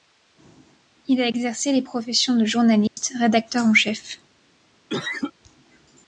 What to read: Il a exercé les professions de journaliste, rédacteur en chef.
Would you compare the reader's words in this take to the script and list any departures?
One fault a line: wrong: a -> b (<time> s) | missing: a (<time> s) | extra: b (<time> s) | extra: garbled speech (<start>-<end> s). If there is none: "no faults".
no faults